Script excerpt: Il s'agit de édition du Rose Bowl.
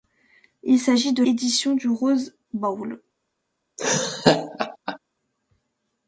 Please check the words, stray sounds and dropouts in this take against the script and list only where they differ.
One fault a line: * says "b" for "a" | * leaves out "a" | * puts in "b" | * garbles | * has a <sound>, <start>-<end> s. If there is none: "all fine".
* has a laugh, 3.8-5.0 s